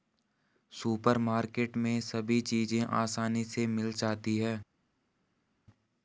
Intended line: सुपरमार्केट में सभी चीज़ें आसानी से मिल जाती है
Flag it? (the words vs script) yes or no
no